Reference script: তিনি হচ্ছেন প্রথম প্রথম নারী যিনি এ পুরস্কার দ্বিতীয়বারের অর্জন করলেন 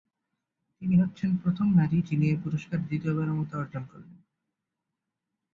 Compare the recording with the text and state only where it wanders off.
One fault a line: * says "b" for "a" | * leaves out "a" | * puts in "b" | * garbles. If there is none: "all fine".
* leaves out "প্রথম"
* puts in "মতো"